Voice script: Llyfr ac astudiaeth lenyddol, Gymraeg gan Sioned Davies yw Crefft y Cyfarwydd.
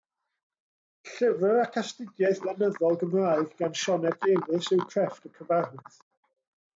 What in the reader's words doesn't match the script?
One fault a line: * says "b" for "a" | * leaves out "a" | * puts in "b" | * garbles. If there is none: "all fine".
all fine